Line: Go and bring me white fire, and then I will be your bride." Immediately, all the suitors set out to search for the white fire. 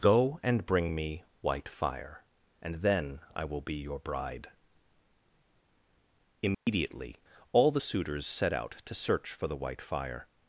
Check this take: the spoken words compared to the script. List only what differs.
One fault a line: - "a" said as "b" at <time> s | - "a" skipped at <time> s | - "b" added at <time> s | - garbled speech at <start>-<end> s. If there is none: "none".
none